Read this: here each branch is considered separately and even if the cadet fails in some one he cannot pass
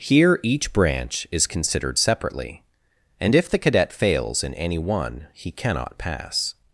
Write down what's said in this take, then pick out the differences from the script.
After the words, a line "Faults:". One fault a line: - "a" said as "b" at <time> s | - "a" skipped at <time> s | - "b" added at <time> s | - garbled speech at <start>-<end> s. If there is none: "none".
here each branch is considered separately and if the cadet fails in any one he cannot pass
Faults:
- "even" skipped at 3.4 s
- "some" said as "any" at 4.5 s